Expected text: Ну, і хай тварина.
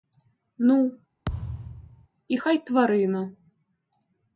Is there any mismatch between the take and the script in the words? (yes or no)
no